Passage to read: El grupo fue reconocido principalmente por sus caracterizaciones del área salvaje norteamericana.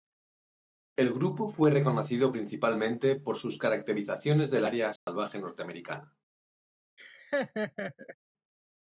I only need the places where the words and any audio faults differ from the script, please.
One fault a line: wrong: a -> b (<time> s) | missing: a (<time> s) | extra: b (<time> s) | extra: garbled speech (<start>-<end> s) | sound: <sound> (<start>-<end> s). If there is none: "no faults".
sound: dropout (5.0-5.1 s)
sound: laugh (7.0-8.2 s)